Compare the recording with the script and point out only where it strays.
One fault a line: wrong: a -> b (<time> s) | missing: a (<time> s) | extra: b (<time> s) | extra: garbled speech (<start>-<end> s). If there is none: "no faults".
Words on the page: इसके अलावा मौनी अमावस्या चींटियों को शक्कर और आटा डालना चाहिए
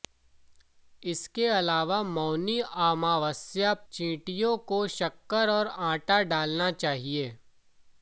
no faults